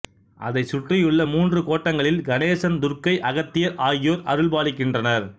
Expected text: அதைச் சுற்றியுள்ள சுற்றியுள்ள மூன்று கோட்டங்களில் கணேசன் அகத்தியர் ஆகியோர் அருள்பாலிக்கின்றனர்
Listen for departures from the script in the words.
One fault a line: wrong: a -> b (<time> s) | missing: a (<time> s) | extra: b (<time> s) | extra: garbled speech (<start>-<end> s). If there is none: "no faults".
missing: சுற்றியுள்ள (1.2 s)
extra: துர்க்கை (2.8 s)